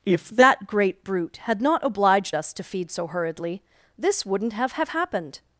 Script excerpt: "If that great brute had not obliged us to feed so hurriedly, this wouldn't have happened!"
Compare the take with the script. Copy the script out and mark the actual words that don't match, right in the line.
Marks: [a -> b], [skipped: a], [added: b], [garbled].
"If that great brute had not obliged us to feed so hurriedly, this wouldn't have [added: have] happened!"